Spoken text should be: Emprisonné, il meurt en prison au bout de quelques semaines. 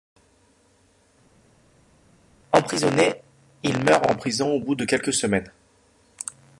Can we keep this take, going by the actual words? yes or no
yes